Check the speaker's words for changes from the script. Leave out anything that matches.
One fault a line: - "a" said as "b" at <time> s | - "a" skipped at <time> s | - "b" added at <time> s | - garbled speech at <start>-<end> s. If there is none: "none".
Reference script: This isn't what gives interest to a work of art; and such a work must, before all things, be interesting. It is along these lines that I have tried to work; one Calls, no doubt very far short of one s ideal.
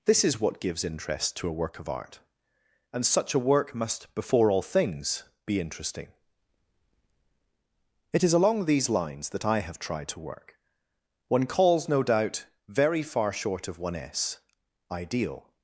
- "isn't" said as "is" at 0.2 s